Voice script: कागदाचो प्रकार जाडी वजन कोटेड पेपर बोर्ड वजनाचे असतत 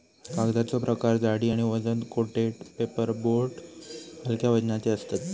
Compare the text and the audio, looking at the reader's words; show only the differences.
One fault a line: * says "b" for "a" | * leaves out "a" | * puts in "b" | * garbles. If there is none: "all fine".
* puts in "आणि"
* puts in "हलक्या"